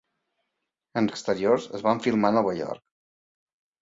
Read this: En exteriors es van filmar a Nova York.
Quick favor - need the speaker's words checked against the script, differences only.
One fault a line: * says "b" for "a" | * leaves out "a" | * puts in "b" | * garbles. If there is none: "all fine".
all fine